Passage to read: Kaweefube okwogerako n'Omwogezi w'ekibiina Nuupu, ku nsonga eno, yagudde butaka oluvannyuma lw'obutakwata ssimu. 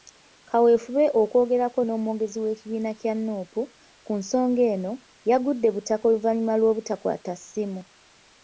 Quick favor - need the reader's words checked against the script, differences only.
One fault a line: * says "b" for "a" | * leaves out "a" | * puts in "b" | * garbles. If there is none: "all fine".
* puts in "kya"